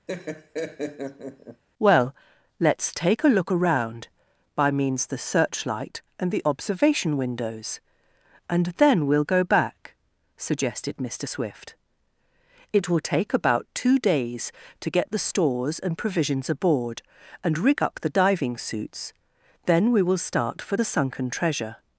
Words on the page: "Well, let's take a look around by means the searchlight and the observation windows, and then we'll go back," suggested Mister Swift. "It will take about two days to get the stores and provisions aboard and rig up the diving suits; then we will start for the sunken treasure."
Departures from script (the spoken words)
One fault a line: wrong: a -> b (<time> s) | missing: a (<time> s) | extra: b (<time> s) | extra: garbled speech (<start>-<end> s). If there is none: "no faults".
no faults